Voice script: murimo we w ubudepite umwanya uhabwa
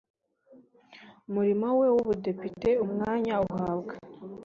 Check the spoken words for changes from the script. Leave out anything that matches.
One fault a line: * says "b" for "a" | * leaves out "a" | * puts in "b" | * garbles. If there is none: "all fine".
all fine